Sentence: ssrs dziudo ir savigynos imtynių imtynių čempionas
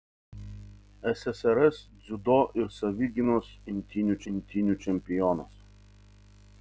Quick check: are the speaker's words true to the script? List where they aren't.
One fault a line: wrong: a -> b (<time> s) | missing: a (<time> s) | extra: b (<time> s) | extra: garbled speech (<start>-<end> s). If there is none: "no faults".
no faults